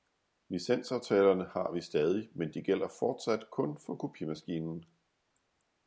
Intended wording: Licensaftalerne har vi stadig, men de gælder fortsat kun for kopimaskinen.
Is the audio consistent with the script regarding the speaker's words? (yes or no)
yes